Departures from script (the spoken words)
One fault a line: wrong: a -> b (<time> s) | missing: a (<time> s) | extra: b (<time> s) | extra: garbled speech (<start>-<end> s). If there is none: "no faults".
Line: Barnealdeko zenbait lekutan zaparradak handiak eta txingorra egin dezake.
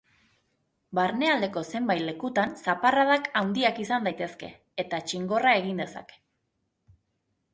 extra: izan daitezke (3.8 s)